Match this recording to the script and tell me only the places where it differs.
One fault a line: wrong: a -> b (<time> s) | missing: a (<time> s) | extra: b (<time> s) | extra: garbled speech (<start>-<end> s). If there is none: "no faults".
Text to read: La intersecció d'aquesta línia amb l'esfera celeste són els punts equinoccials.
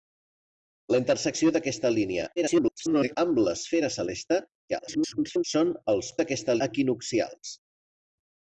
extra: garbled speech (2.4-3.2 s)
extra: garbled speech (4.7-5.4 s)
wrong: punts -> d'aquesta (6.2 s)